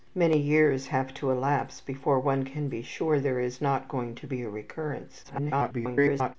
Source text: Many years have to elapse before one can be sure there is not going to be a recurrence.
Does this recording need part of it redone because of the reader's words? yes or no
yes